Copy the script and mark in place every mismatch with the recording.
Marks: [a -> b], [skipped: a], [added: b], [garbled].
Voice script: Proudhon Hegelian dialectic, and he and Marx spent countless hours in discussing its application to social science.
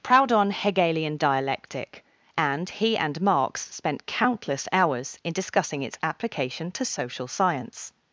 Proudhon Hegelian dialectic, and he and Marx spent countless hours in discussing its application to social science.